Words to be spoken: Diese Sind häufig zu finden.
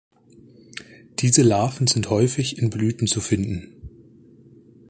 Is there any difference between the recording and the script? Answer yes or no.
yes